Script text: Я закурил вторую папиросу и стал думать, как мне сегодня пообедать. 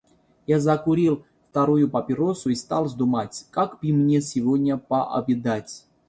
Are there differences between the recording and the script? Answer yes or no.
yes